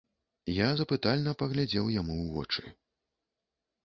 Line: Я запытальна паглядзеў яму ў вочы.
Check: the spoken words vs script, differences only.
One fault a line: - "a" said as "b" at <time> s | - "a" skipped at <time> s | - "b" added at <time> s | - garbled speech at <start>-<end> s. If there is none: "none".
none